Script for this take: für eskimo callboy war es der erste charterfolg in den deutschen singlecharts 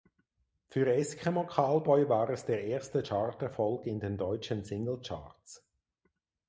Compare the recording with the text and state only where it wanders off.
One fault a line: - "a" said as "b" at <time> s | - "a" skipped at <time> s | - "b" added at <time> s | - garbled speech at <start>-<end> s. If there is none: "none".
none